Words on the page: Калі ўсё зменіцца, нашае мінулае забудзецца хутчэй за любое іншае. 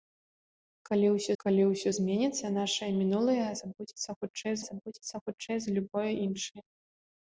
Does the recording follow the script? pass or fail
fail